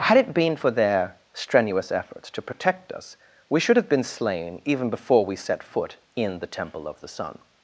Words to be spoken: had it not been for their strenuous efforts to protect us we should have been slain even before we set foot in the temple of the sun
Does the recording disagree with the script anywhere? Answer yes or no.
yes